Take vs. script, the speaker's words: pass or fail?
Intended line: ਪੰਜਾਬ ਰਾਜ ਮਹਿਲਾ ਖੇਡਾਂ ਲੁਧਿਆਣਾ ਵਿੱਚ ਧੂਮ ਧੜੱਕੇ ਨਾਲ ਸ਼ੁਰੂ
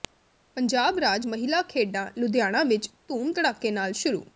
pass